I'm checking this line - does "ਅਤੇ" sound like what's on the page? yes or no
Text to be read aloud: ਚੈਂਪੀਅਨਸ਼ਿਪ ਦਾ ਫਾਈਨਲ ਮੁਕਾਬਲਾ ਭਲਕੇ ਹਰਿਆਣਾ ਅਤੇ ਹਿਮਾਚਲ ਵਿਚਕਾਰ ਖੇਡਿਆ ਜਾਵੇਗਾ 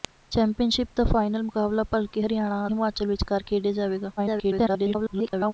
no